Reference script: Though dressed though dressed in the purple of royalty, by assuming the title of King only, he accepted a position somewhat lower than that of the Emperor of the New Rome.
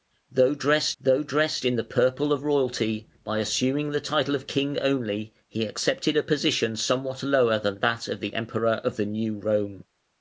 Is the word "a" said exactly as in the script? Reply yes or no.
yes